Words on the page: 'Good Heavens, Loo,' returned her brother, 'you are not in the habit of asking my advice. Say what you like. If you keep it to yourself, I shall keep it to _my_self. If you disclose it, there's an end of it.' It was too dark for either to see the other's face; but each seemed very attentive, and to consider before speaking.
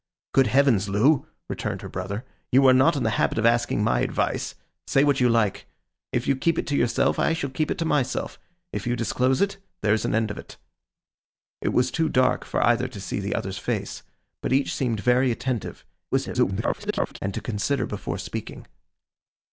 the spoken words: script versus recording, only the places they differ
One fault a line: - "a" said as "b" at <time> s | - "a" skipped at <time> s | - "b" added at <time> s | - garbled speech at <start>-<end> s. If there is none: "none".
- garbled speech at 16.1-17.2 s